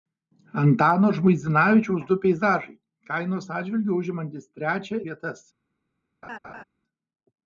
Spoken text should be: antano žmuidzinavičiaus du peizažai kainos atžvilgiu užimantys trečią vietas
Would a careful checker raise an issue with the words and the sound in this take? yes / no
yes